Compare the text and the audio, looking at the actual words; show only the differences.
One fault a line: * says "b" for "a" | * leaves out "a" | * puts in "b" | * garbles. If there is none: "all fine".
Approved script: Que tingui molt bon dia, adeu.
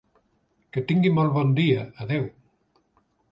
all fine